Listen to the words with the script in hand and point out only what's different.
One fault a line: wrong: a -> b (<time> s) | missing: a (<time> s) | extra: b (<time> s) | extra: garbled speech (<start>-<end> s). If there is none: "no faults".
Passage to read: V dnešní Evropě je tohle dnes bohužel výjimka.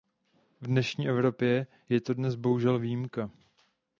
wrong: tohle -> to (2.0 s)